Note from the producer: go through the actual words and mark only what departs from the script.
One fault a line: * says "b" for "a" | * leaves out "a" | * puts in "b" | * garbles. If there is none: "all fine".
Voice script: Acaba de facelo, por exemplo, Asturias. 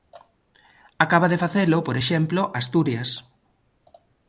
all fine